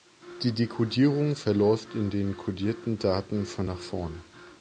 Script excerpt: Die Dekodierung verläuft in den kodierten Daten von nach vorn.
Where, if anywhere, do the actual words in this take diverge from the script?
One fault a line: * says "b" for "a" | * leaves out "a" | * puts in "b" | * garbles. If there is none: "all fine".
all fine